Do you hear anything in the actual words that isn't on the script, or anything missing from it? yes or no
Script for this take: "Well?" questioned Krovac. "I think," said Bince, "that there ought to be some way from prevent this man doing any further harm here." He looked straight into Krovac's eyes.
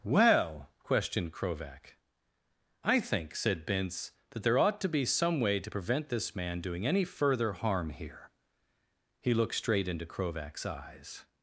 yes